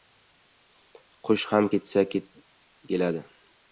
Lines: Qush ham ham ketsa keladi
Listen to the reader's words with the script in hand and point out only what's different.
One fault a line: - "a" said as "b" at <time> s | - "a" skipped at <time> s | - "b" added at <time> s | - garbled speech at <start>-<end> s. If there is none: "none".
- "ham" skipped at 1.7 s